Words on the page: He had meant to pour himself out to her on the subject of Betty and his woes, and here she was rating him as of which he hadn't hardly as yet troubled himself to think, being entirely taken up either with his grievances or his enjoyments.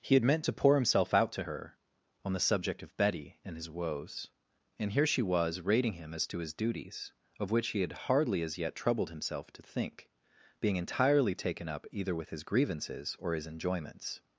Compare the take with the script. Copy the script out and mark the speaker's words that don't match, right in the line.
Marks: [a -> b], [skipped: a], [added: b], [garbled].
He had meant to pour himself out to her on the subject of Betty and his woes, and here she was rating him as [added: to his duties] of which he [hadn't -> had] hardly as yet troubled himself to think, being entirely taken up either with his grievances or his enjoyments.